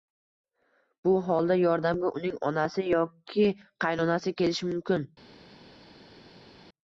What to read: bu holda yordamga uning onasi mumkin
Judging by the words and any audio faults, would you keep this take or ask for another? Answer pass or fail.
fail